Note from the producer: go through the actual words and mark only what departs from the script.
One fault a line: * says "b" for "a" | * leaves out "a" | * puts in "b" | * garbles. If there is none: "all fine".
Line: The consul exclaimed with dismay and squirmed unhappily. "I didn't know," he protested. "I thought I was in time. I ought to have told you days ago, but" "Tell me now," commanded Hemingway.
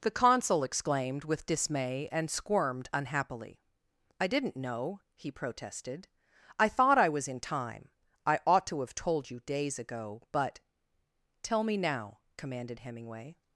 all fine